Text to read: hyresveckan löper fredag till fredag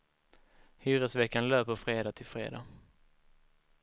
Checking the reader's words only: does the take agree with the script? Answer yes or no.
yes